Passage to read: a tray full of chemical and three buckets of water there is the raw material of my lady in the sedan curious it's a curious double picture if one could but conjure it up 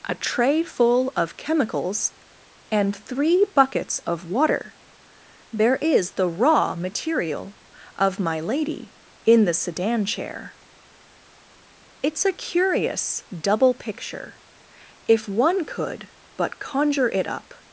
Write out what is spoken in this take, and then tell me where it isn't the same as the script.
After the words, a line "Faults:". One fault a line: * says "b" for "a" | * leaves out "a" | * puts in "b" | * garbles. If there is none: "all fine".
a tray full of chemicals and three buckets of water there is the raw material of my lady in the sedan chair it's a curious double picture if one could but conjure it up
Faults:
* says "chemicals" for "chemical"
* says "chair" for "curious"